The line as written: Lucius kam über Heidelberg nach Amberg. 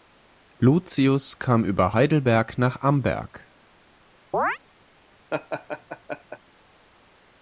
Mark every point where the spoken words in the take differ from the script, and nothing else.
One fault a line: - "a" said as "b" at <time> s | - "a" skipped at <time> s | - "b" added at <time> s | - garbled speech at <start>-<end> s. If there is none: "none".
none